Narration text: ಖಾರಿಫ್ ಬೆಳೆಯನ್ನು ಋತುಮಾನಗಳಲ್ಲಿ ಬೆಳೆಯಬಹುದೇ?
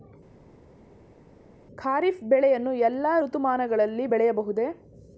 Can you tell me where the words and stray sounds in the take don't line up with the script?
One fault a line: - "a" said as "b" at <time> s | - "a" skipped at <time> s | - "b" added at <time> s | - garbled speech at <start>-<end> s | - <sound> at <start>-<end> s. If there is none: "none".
- "ಎಲ್ಲಾ" added at 2.7 s